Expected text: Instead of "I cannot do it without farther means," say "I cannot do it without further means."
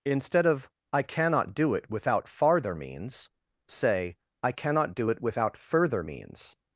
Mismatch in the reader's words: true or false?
false